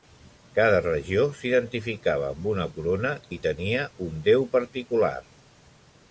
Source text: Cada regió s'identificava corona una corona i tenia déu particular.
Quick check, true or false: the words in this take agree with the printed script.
false